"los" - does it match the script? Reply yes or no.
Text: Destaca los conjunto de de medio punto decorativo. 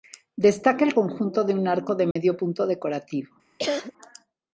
no